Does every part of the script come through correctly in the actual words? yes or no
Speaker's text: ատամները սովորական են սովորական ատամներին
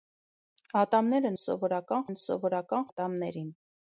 yes